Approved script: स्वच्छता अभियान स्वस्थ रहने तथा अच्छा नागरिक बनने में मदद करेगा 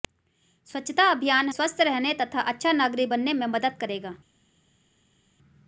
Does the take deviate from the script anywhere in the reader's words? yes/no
no